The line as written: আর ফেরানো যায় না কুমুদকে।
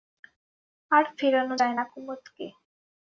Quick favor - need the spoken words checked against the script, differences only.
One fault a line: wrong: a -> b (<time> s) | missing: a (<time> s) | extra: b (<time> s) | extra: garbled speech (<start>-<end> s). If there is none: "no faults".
no faults